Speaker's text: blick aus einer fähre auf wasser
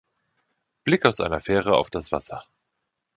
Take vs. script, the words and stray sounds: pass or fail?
fail